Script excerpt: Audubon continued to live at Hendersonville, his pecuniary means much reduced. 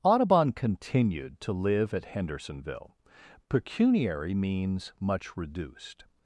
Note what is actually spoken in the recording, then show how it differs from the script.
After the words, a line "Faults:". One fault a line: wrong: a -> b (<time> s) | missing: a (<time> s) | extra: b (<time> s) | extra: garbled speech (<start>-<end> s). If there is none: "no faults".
Audubon continued to live at Hendersonville, pecuniary means much reduced.
Faults:
missing: his (3.0 s)